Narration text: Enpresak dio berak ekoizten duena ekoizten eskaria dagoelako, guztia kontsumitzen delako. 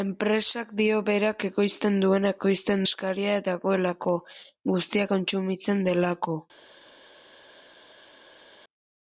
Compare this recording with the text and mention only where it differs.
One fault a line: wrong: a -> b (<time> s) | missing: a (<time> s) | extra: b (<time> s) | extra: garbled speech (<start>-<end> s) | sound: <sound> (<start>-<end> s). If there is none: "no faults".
no faults